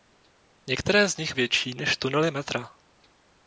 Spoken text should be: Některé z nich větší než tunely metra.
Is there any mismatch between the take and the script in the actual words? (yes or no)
no